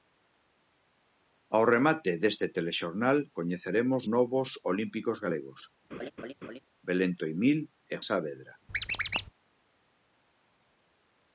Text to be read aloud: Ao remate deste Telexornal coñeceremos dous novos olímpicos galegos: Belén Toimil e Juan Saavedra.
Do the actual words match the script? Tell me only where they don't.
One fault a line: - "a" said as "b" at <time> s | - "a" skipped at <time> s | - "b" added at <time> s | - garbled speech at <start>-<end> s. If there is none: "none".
- "dous" skipped at 4.0 s
- "Juan" skipped at 8.0 s